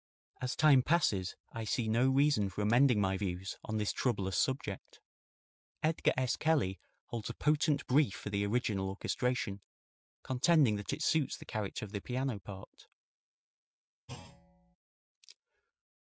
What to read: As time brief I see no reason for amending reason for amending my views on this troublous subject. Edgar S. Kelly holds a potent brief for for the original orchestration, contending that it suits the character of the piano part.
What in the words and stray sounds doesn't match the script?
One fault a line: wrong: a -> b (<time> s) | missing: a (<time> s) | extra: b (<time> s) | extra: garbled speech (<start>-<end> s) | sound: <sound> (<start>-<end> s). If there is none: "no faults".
wrong: brief -> passes (0.8 s)
missing: reason for amending (3.0 s)
missing: for (8.3 s)
sound: thud (14.1-14.8 s)